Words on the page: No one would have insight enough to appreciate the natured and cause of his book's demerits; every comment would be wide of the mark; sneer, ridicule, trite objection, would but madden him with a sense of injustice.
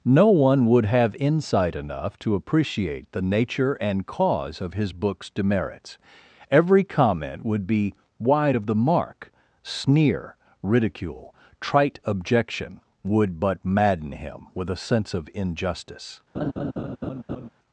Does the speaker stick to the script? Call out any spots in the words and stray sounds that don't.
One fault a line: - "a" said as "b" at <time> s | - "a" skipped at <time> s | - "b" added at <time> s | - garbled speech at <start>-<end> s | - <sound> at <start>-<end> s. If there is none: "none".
- "natured" said as "nature" at 3.2 s
- laugh at 16.3-17.5 s